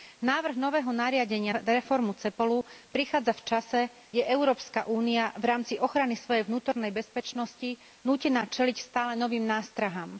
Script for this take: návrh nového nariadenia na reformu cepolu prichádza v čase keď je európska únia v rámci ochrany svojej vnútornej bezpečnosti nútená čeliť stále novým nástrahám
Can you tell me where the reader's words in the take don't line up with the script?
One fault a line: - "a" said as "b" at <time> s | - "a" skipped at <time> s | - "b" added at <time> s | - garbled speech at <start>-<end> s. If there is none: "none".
- "na" skipped at 1.5 s
- "keď" skipped at 3.8 s